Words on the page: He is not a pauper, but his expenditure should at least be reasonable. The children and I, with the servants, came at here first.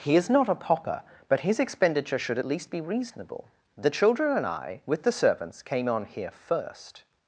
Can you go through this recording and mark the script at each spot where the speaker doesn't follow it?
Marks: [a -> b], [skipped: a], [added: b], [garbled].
He is not a pauper, but his expenditure should at least be reasonable. The children and I, with the servants, came [at -> on] here first.